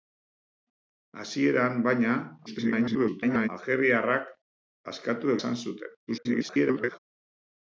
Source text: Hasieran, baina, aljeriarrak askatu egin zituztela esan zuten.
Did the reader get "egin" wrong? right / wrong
wrong